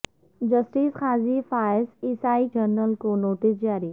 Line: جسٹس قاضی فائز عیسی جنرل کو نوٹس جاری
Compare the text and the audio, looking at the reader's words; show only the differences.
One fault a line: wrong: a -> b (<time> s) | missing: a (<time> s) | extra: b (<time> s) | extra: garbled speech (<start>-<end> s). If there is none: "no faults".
no faults